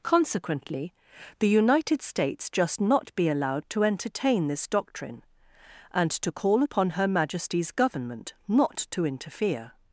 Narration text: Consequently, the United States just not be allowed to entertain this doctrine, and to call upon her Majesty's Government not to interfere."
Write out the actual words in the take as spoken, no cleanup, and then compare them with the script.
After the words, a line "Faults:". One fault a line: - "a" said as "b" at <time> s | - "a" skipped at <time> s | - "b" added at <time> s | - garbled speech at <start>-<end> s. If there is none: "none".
Consequently, the United States just not be allowed to entertain this doctrine, and to call upon her Majesty's Government not to interfere."
Faults:
none